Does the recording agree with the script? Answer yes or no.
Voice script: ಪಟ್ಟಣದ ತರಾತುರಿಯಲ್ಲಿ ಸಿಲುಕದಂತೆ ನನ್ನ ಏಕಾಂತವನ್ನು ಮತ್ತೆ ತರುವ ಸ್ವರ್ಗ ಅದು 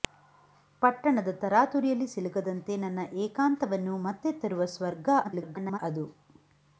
no